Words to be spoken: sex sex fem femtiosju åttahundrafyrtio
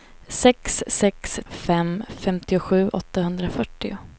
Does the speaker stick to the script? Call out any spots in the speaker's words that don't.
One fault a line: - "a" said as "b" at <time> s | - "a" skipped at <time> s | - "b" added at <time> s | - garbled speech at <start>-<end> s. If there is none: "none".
none